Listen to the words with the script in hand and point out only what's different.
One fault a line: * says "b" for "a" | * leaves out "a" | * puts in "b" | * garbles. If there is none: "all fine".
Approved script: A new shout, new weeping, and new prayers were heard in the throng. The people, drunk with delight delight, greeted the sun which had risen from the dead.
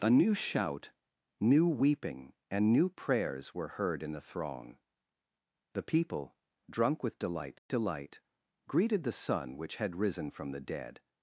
all fine